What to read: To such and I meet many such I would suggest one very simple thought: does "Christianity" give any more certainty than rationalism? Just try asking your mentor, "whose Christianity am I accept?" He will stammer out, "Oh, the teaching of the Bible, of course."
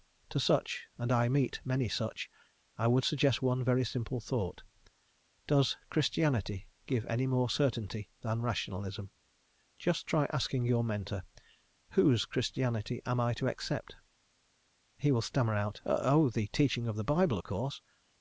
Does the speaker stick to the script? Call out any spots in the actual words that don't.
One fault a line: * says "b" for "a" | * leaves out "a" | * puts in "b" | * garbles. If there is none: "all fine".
* puts in "to"